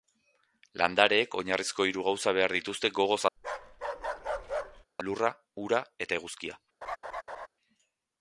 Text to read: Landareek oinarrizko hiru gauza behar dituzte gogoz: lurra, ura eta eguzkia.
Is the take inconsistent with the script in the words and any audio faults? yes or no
yes